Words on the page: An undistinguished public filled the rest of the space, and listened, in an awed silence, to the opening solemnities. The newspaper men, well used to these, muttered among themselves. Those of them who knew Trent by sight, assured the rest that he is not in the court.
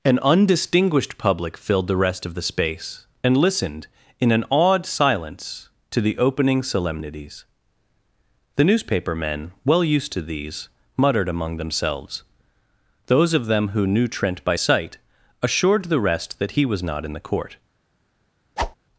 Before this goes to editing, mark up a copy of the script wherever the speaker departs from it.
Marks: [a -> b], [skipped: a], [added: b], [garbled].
An undistinguished public filled the rest of the space, and listened, in an awed silence, to the opening solemnities. The newspaper men, well used to these, muttered among themselves. Those of them who knew Trent by sight, assured the rest that he [is -> was] not in the court.